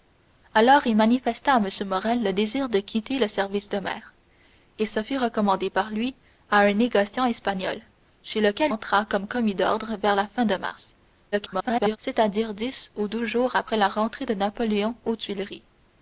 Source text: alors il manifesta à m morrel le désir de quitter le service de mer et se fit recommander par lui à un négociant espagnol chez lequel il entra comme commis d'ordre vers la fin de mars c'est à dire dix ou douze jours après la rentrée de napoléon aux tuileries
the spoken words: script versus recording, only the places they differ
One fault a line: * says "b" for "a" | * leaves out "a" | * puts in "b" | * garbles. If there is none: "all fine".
* leaves out "il"
* garbles